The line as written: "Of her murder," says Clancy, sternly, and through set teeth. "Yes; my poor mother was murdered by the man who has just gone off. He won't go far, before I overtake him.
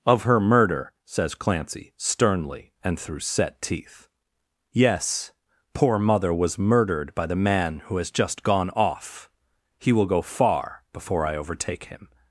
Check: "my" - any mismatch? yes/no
yes